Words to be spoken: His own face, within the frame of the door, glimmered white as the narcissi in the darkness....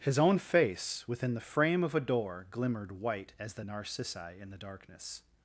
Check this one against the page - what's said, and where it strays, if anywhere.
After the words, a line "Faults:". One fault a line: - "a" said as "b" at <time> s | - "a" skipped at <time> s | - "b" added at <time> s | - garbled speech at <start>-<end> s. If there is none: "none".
His own face, within the frame of a door, glimmered white as the narcissi in the darkness....
Faults:
- "the" said as "a" at 1.9 s